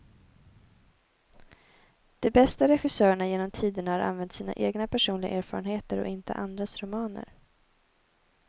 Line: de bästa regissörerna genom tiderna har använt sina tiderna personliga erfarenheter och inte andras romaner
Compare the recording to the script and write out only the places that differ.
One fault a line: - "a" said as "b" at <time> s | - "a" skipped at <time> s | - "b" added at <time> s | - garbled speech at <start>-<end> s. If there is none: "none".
- "tiderna" said as "egna" at 4.5 s